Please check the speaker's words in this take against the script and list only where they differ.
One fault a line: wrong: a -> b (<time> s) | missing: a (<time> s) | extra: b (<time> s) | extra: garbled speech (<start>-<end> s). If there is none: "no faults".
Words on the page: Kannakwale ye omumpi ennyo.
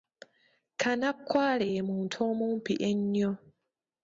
extra: muntu (1.9 s)